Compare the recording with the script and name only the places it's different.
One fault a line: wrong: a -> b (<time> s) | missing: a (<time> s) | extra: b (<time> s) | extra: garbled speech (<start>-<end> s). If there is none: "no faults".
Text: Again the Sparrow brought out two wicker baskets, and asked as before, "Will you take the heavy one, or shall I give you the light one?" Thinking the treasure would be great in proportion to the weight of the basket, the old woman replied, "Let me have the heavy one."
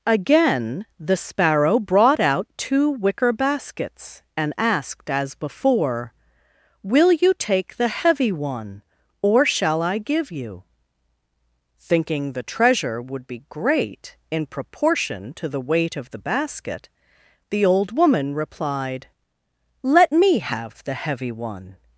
missing: the light one (10.6 s)